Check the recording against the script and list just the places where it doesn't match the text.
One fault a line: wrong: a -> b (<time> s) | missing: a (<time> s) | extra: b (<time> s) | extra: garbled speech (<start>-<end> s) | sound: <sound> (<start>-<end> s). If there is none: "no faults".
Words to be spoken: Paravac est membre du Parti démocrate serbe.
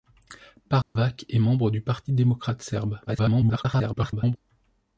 sound: dropout (0.8-1.0 s)
extra: garbled speech (3.1-4.4 s)